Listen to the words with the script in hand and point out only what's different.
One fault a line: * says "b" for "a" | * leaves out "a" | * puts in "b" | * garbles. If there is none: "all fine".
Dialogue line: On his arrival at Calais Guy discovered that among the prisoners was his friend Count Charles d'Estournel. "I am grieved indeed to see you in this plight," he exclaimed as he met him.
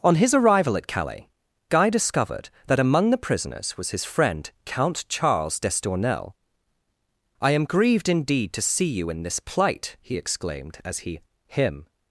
* leaves out "met"